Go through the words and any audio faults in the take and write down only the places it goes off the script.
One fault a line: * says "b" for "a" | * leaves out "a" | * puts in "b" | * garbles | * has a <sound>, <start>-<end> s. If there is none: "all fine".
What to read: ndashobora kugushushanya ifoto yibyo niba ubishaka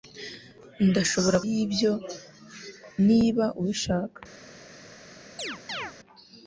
* leaves out "kugushushanya ifoto"
* has a chirp, 5.4-5.9 s